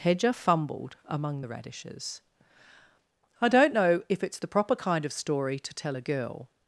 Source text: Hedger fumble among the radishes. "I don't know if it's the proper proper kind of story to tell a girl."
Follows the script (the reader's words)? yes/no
no